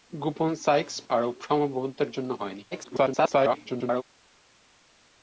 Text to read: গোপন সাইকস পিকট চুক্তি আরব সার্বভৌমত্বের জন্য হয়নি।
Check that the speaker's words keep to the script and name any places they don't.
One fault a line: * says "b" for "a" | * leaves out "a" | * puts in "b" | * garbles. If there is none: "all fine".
* leaves out "পিকট চুক্তি"
* garbles